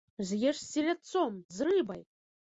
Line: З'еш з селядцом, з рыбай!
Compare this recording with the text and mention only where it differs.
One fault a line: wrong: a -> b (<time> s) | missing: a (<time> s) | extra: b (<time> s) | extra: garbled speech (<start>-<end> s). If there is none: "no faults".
no faults